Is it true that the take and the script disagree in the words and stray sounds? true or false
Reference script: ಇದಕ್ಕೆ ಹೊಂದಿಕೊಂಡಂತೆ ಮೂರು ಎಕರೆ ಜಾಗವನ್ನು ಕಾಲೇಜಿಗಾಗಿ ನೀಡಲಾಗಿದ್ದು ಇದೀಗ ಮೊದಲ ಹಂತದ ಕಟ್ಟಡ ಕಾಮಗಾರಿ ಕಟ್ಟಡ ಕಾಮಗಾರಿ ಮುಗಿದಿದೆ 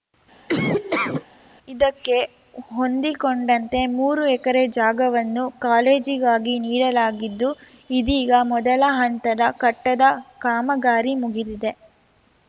true